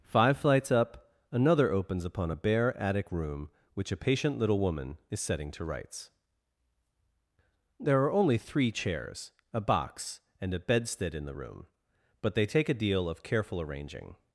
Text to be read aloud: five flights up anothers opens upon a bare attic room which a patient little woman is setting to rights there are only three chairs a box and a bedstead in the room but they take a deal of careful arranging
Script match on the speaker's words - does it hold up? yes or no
no